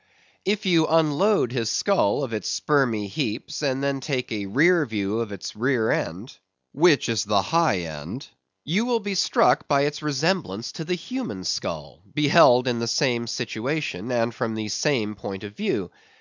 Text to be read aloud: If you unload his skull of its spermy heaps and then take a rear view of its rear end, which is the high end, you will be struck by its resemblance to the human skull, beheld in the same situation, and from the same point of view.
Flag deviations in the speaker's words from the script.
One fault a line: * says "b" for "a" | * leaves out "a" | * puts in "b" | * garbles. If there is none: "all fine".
all fine